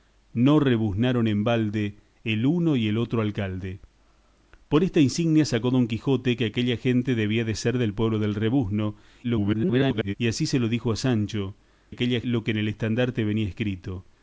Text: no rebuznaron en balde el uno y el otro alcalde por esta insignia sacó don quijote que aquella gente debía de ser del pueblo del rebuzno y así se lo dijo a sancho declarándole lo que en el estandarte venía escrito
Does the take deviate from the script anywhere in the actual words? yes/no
yes